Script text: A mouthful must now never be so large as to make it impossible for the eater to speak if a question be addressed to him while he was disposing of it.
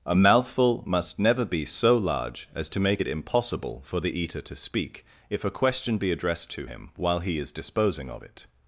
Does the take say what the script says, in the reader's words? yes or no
no